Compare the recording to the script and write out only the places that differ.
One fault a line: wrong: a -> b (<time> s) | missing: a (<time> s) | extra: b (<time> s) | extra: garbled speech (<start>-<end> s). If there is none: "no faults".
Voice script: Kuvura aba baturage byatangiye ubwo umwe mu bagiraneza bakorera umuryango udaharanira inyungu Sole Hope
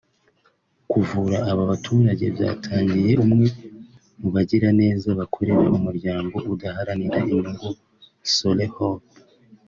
missing: ubwo (3.1 s)